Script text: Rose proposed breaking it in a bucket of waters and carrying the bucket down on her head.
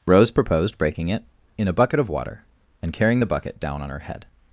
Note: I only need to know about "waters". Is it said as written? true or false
false